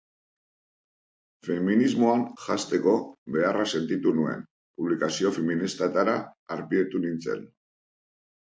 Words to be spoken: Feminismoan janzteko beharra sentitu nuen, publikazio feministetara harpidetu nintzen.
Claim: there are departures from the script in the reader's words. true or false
false